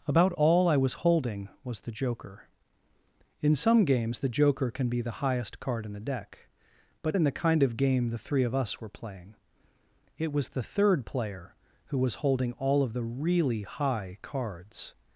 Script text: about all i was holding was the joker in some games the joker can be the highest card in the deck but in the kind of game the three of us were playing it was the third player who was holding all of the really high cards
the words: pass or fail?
pass